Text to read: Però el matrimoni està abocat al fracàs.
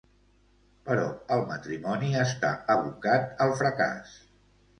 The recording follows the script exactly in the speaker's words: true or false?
true